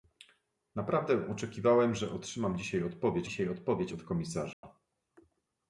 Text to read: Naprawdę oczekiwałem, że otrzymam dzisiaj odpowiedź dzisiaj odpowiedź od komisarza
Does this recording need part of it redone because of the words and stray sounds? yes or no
yes